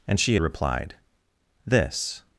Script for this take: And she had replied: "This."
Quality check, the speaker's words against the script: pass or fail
fail